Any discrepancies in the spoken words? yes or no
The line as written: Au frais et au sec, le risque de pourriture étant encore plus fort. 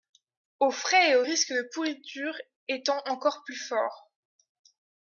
yes